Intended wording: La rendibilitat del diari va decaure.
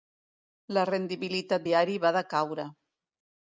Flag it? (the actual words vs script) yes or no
yes